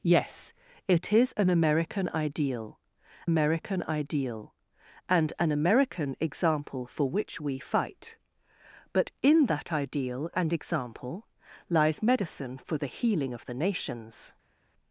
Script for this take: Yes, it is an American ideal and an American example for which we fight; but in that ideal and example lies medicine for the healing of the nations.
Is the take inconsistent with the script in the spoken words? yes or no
yes